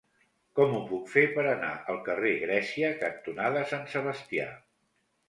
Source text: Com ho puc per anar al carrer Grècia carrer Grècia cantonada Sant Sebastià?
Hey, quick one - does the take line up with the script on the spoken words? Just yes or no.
no